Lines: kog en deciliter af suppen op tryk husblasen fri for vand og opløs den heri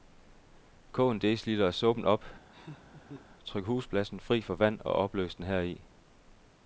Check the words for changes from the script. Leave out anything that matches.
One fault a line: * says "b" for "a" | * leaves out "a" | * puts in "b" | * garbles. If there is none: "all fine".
all fine